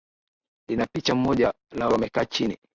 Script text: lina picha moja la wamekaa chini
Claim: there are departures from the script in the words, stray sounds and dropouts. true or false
false